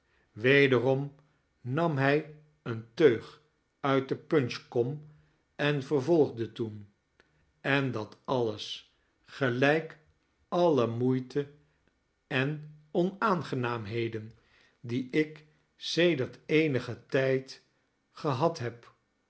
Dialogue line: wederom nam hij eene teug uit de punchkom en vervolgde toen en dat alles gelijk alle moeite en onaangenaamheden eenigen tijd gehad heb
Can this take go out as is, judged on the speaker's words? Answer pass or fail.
fail